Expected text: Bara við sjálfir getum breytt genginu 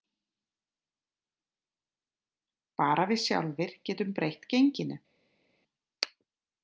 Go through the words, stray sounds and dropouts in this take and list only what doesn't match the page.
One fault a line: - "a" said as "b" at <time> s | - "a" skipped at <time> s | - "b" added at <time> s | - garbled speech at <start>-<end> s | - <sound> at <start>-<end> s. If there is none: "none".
none